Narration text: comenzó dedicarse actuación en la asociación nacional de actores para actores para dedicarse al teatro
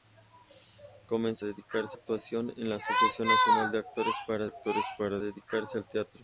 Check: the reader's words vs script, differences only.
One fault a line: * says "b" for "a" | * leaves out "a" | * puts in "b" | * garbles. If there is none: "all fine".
all fine